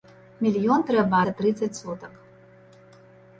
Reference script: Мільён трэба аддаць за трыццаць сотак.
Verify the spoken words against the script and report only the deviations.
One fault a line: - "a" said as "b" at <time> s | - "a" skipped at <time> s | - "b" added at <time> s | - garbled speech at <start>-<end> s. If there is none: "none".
- "аддаць" skipped at 1.2 s